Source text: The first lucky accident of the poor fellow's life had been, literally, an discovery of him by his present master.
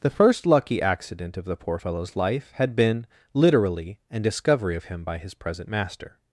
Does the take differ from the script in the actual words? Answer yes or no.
no